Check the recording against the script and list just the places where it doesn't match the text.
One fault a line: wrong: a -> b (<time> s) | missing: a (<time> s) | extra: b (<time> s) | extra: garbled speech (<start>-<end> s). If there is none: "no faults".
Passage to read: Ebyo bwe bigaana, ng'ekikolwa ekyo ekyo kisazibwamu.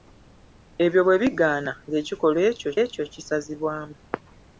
no faults